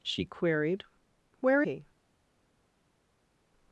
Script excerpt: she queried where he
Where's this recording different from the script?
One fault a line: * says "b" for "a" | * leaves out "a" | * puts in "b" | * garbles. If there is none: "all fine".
all fine